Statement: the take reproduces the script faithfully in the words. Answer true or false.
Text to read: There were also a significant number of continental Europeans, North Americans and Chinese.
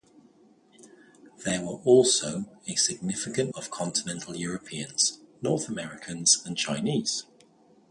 false